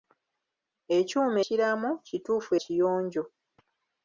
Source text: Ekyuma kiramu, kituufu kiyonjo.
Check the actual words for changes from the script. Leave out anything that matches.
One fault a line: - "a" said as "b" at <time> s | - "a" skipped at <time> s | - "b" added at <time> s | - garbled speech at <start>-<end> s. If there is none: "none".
none